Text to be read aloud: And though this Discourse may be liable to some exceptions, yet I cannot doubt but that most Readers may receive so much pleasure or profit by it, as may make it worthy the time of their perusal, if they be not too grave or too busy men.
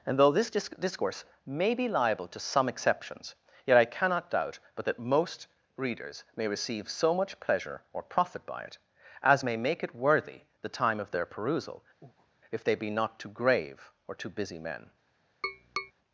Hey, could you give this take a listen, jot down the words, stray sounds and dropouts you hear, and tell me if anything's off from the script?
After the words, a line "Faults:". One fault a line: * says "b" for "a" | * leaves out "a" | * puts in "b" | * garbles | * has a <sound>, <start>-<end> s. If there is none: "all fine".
And though this disc Discourse may be liable to some exceptions, yet I cannot doubt but that most Readers may receive so much pleasure or profit by it, as may make it worthy the time of their perusal, if they be not too grave or too busy men.
Faults:
* puts in "disc"
* has a breath, 12.0-12.3 s
* has a tap, 15.4-15.9 s